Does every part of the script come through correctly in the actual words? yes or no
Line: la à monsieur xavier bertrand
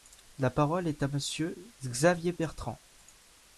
no